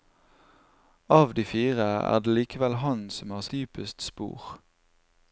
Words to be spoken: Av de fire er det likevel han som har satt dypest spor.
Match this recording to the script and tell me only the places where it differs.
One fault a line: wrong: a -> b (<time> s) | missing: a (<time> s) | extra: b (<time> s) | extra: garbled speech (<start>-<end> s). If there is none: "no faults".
missing: satt (3.4 s)